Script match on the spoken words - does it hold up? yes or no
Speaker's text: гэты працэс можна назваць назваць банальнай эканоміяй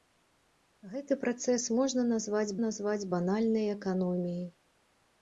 yes